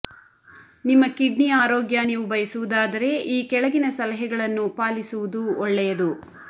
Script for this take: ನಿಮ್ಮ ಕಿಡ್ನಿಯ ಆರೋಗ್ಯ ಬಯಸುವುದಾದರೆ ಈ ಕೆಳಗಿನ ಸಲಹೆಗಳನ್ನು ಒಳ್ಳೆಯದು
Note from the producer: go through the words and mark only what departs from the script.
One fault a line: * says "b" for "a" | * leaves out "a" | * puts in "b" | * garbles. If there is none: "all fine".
* puts in "ನೀವು"
* puts in "ಪಾಲಿಸುವುದು"